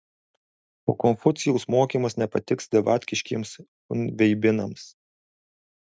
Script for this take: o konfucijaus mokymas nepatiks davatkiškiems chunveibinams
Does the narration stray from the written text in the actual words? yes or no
no